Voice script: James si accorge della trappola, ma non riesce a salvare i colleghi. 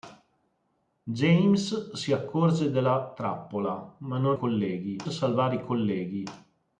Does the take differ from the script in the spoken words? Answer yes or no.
yes